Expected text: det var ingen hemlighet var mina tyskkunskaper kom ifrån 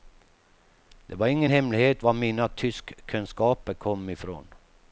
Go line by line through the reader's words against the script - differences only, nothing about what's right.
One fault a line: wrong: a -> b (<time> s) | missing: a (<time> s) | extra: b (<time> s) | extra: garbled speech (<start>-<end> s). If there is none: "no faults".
no faults